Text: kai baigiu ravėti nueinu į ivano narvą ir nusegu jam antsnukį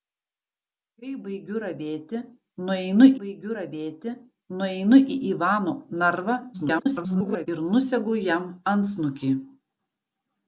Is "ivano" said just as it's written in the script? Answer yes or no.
yes